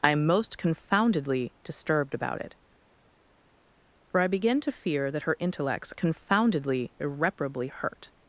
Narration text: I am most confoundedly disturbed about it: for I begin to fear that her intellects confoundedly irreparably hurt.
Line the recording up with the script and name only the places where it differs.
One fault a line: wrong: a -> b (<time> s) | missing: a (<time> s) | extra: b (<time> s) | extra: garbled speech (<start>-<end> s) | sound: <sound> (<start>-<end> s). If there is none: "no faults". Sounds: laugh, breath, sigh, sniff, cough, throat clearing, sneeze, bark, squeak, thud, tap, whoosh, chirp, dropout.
no faults